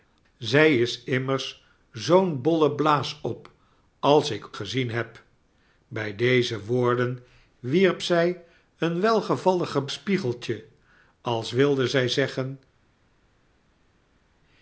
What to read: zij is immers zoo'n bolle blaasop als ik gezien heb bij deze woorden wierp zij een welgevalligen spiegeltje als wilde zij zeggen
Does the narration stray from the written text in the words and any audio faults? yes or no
no